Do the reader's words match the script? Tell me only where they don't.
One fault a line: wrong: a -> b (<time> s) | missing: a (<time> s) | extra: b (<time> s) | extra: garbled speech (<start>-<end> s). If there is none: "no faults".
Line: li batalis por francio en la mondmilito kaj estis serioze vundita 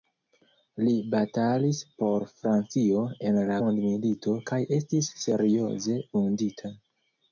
no faults